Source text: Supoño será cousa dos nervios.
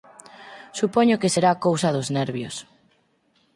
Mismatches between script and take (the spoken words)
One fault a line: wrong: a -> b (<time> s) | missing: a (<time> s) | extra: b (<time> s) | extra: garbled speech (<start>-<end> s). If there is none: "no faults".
extra: que (1.2 s)